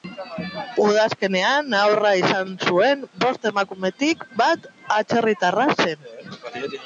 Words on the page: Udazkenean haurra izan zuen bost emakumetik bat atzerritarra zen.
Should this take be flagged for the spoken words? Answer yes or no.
no